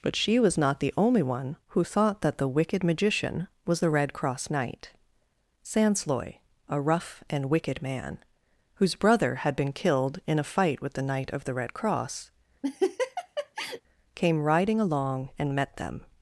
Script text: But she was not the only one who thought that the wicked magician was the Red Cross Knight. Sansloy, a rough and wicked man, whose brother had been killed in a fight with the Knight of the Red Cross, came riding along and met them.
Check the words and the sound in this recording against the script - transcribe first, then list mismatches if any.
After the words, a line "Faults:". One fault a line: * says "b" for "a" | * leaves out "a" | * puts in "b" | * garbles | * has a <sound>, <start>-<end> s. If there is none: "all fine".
But she was not the only one who thought that the wicked magician was the Red Cross Knight. Sansloy, a rough and wicked man, whose brother had been killed in a fight with the Knight of the Red Cross, came riding along and met them.
Faults:
* has a laugh, 12.6-13.8 s